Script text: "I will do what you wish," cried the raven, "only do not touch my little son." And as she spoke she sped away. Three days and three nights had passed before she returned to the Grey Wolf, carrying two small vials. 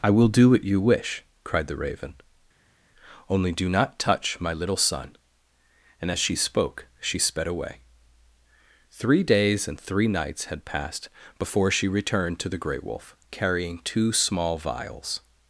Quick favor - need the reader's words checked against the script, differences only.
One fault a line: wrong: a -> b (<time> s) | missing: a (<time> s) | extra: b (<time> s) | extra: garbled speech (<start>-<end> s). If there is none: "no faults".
no faults